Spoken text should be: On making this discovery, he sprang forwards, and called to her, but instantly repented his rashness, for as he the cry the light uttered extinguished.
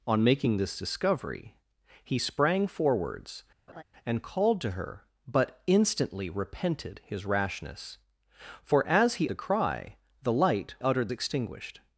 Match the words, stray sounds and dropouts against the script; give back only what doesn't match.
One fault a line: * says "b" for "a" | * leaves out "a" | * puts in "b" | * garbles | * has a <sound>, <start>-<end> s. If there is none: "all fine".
* has a laugh, 3.7-3.8 s